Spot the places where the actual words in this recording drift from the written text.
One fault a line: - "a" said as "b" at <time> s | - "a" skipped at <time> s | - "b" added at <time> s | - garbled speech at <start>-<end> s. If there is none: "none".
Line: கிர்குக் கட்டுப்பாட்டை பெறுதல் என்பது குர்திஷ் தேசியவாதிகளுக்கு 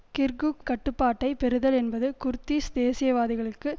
none